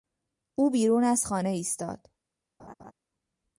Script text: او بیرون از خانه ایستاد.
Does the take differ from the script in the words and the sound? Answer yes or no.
yes